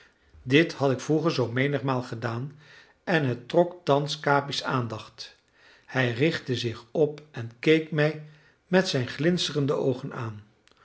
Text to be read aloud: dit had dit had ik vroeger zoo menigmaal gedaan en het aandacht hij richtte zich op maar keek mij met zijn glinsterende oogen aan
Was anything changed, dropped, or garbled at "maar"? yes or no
yes